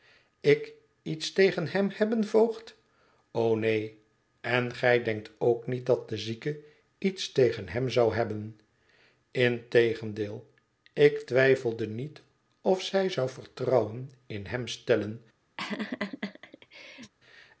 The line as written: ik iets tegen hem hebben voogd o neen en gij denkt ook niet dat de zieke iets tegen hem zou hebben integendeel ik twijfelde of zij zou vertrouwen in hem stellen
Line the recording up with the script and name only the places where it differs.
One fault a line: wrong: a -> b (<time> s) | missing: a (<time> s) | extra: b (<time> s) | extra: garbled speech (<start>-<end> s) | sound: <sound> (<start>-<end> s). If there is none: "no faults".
extra: niet (11.9 s)
sound: laugh (15.6-17.1 s)